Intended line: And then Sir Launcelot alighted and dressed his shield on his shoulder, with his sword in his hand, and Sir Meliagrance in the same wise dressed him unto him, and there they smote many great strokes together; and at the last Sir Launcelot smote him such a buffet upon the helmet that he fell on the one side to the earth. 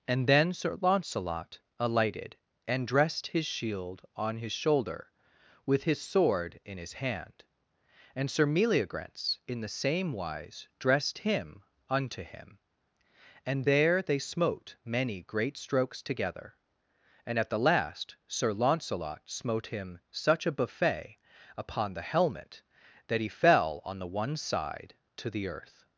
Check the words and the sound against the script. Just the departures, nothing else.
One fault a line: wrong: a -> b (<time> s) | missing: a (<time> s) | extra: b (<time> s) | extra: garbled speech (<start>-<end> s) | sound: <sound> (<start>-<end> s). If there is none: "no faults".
no faults